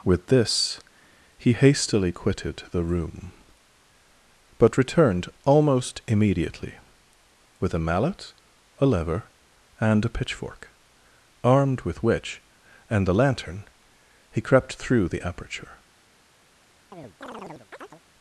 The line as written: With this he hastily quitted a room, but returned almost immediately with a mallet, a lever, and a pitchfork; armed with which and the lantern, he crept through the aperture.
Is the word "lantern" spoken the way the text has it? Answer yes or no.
yes